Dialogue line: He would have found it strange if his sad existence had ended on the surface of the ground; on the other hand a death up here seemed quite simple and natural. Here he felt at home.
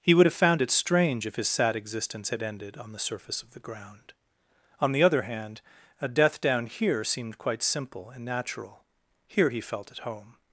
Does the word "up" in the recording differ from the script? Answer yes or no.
yes